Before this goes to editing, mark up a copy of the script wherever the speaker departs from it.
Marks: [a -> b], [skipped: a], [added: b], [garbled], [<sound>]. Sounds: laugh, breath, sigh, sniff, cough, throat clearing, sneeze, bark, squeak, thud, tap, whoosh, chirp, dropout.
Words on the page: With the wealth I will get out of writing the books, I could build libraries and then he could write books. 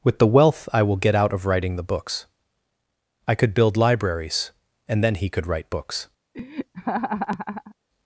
With the wealth I will get out of writing the books, I could build libraries and then he could write books. [laugh]